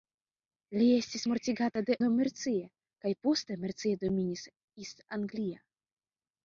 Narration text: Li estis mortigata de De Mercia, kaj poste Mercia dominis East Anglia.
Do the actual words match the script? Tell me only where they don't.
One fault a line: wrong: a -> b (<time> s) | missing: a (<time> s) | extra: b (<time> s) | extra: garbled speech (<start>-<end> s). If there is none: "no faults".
no faults